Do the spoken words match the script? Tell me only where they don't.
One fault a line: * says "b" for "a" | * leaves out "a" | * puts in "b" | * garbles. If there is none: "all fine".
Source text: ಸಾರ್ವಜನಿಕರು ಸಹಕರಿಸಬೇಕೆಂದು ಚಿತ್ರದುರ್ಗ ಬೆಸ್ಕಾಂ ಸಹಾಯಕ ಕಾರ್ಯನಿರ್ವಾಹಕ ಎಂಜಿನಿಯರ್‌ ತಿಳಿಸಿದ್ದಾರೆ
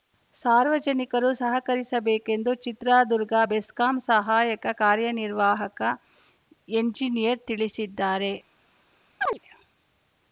all fine